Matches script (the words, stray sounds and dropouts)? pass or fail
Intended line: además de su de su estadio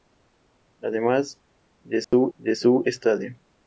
fail